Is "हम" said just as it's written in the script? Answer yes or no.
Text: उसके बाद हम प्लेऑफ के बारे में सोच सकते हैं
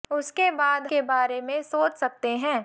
no